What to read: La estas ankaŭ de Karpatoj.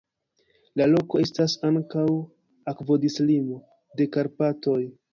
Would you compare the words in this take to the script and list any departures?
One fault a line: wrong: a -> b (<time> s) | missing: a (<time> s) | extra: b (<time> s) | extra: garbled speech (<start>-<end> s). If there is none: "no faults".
extra: loko (0.9 s)
extra: akvodislimo (2.8 s)